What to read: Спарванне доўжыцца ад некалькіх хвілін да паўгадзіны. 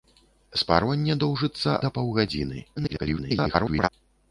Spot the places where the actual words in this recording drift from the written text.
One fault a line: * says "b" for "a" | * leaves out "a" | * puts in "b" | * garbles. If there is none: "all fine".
* leaves out "ад некалькіх хвілін"
* garbles